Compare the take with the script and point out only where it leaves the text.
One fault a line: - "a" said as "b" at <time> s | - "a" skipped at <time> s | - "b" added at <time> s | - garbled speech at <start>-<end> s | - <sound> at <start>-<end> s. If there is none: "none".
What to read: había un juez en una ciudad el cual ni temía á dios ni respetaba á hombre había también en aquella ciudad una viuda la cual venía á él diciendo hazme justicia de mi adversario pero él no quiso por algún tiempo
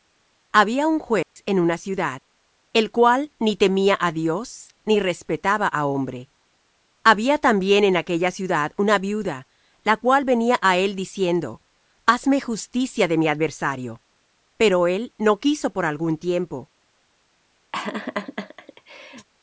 - dropout at 1.2-1.4 s
- laugh at 17.7-19.3 s